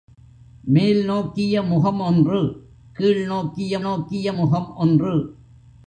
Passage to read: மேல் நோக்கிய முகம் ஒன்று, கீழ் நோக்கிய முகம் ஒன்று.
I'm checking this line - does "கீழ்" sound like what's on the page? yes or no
yes